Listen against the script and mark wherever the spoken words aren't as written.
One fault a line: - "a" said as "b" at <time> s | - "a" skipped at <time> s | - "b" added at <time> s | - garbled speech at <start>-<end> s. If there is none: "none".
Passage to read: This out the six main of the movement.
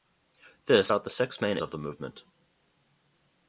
none